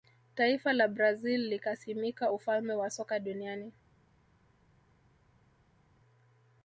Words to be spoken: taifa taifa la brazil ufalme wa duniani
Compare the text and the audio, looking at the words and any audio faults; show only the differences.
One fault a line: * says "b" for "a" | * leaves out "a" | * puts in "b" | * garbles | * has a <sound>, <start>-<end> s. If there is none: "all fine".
* leaves out "taifa"
* puts in "likasimika"
* puts in "soka"